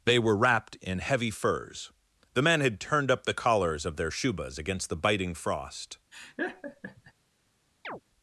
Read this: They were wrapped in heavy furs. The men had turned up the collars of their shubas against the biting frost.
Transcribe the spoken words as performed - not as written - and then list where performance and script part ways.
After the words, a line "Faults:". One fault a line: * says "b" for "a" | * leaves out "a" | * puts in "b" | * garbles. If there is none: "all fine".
They were wrapped in heavy furs. The men had turned up the collars of their shubas against the biting frost.
Faults:
all fine